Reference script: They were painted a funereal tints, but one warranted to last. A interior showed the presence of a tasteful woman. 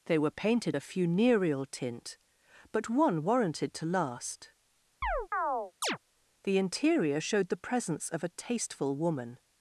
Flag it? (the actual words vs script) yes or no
yes